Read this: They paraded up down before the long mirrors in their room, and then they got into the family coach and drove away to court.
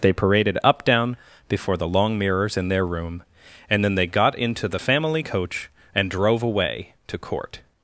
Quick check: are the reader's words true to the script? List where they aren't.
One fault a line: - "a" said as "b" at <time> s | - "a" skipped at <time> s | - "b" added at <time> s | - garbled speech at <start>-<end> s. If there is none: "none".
none